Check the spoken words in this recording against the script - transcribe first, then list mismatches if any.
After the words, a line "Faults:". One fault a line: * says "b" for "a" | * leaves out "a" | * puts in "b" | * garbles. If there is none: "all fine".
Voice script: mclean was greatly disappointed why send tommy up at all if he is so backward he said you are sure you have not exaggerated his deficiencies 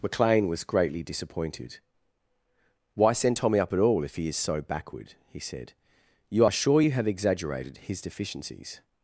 mclean was greatly disappointed why send tommy up at all if he is so backward he said you are sure you have exaggerated his deficiencies
Faults:
* leaves out "not"